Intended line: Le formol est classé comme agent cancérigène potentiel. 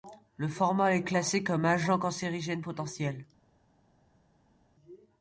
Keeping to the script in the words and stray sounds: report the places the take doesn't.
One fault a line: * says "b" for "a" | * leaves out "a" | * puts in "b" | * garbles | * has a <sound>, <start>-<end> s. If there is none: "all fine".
all fine